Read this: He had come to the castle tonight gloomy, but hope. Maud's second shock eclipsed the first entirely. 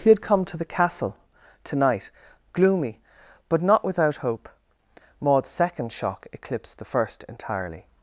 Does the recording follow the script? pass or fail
fail